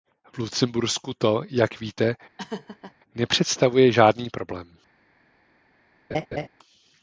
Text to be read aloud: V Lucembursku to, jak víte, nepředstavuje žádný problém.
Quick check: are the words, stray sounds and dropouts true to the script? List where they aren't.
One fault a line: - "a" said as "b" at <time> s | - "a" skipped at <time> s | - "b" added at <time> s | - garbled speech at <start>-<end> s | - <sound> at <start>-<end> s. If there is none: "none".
- laugh at 2.4-2.9 s
- laugh at 6.1-6.5 s